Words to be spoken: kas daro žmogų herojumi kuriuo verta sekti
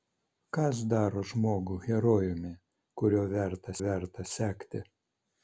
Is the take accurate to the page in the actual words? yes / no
no